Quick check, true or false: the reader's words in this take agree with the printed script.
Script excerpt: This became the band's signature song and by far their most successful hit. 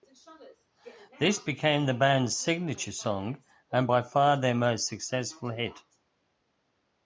true